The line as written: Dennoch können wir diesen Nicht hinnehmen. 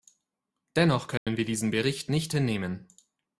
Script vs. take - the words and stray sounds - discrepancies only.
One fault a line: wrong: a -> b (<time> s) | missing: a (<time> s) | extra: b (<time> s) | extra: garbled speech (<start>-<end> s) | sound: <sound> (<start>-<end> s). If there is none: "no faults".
sound: dropout (1.2-1.3 s)
extra: Bericht (1.7 s)